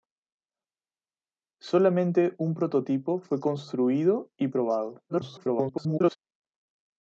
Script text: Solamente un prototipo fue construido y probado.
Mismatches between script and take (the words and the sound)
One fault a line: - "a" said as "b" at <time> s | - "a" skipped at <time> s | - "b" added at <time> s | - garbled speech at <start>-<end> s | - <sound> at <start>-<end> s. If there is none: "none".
- garbled speech at 5.1-6.2 s